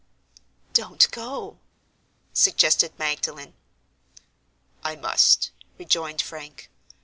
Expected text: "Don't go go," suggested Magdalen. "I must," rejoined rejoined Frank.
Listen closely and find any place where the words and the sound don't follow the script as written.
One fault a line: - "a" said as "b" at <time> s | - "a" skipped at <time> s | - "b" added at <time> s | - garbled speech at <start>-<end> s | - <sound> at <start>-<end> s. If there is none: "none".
- "go" skipped at 1.6 s
- "rejoined" skipped at 6.2 s